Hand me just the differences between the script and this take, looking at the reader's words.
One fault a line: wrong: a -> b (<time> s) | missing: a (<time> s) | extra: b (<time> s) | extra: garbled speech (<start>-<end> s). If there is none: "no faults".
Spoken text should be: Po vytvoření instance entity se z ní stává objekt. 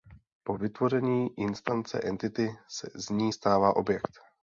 no faults